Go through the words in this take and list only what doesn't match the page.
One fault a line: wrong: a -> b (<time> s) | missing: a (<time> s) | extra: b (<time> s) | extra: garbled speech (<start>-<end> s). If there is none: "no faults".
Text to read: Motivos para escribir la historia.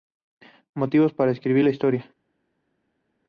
no faults